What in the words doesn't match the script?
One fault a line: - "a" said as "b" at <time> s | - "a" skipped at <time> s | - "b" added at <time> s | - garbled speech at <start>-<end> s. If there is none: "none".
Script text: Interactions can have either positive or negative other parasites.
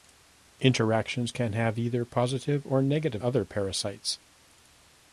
none